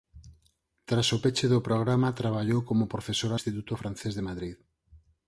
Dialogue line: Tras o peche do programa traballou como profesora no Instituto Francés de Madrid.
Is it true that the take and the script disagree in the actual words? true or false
true